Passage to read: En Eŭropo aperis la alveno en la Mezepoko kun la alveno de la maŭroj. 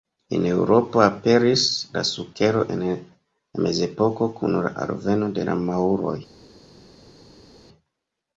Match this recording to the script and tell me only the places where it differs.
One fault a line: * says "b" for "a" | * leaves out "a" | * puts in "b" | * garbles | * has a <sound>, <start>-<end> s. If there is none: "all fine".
* says "sukero" for "alveno"